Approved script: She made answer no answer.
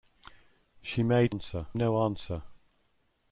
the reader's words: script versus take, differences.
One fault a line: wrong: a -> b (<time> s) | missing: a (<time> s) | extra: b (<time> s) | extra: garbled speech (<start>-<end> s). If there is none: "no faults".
no faults